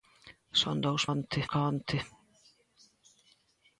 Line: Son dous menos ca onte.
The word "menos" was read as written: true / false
false